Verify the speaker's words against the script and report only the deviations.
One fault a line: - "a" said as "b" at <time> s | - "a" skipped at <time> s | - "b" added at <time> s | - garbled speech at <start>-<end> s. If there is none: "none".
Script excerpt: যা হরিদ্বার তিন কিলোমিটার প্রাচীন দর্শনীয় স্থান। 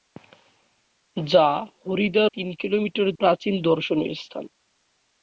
none